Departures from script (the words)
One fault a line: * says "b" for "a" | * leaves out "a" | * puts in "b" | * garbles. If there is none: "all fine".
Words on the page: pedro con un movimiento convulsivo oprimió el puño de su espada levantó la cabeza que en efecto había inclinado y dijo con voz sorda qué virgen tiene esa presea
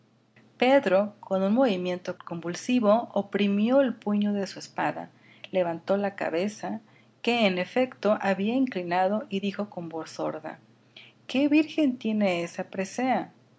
all fine